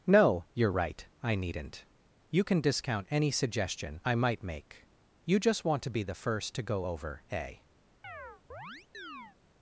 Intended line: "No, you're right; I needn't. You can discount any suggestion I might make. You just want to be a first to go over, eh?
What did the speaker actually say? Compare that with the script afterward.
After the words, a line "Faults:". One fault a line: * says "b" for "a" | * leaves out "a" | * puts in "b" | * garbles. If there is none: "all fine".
"No, you're right; I needn't. You can discount any suggestion I might make. You just want to be the first to go over, eh?
Faults:
* says "the" for "a"